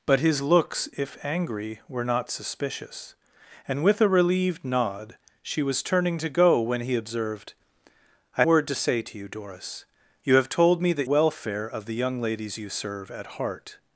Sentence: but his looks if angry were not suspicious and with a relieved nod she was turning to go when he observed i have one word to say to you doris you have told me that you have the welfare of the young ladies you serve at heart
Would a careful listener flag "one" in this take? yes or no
yes